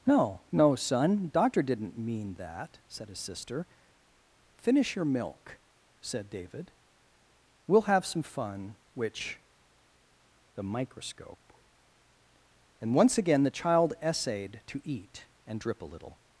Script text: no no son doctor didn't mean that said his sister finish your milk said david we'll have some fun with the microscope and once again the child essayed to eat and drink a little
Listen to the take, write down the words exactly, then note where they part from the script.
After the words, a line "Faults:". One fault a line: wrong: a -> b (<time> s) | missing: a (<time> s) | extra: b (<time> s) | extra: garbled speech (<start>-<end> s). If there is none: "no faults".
no no son doctor didn't mean that said his sister finish your milk said david we'll have some fun which the microscope and once again the child essayed to eat and drip a little
Faults:
wrong: with -> which (8.9 s)
wrong: drink -> drip (15.6 s)